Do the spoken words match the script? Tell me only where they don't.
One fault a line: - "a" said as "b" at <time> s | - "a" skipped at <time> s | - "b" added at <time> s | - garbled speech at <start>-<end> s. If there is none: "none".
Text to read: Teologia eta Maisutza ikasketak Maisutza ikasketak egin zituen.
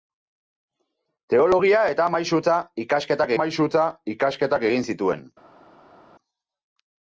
none